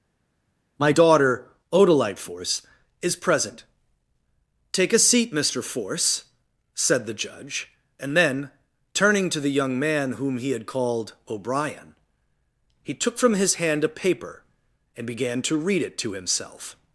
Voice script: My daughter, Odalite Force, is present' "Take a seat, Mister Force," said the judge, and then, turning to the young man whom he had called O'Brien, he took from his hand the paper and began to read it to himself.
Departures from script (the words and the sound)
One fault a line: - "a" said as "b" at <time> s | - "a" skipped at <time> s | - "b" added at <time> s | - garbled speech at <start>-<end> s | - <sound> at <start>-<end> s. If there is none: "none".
- "the" said as "a" at 13.9 s